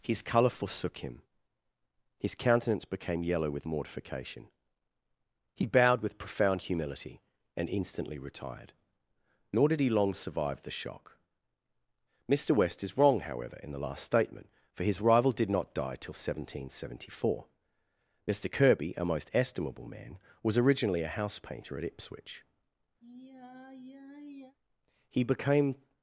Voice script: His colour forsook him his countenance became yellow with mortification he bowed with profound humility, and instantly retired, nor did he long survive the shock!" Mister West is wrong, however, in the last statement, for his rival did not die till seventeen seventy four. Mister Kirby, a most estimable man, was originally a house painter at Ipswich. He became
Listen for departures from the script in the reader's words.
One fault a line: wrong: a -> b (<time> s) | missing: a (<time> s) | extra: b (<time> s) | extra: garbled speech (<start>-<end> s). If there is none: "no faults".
no faults